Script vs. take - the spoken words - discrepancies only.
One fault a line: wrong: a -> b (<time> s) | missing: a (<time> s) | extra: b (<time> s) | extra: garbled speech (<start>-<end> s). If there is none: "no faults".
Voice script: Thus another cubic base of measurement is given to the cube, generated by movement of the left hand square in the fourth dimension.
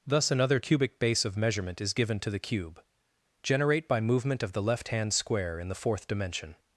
wrong: generated -> generate (3.4 s)